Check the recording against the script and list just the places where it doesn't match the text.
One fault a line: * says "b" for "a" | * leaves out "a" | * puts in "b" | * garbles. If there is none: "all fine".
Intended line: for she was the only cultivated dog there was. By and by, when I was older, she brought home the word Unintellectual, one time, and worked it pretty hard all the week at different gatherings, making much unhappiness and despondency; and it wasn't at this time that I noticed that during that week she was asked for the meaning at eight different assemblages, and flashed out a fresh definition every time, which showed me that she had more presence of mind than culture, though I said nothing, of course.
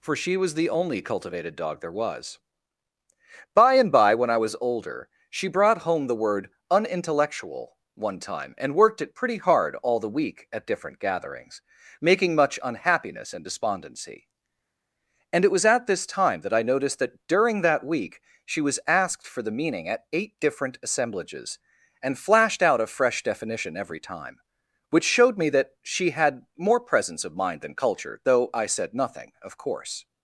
* says "was" for "wasn't"